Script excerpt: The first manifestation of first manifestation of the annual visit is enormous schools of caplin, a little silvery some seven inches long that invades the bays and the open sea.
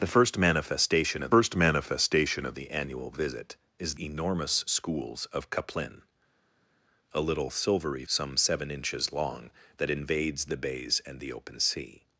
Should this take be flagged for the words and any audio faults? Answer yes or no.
no